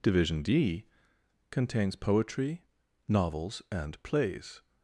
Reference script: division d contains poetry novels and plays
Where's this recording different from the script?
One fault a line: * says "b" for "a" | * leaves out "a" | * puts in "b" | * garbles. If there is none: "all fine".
all fine